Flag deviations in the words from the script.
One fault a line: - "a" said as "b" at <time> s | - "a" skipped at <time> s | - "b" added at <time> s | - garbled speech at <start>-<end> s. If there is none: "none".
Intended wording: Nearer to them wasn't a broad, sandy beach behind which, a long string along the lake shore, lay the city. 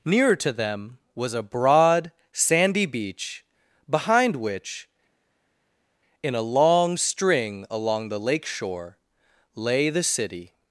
- "wasn't" said as "was" at 1.1 s
- "in" added at 6.2 s